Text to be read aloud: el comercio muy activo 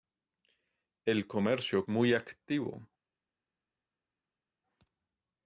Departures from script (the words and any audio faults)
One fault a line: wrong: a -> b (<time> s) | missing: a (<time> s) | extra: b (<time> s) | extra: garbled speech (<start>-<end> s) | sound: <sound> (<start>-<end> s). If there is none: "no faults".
no faults